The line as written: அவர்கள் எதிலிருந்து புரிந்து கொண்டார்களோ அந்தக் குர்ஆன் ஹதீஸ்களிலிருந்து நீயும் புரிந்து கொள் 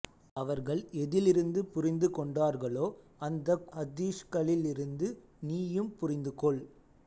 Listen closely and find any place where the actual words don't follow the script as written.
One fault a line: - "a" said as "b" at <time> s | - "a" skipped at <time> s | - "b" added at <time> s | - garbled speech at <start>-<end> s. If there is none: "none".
- "குர்ஆன்" skipped at 3.7 s